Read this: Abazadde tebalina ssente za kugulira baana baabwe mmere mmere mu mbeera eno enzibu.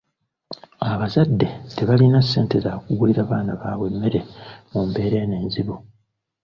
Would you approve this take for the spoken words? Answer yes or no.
no